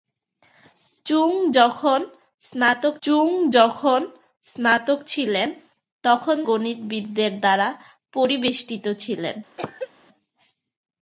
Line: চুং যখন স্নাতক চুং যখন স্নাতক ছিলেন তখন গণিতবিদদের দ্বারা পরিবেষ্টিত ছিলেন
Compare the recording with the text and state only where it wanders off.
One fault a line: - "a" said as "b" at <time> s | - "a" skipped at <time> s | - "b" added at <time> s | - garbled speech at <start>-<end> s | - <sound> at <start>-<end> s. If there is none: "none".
- cough at 9.6-9.9 s